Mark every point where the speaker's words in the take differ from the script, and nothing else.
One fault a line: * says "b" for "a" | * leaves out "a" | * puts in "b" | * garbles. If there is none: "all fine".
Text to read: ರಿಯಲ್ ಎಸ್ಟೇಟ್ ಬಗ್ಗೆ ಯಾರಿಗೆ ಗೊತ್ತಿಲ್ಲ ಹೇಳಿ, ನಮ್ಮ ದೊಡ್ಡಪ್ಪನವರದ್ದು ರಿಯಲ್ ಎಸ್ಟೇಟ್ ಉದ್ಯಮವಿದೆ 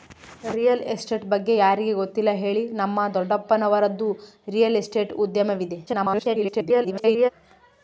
* garbles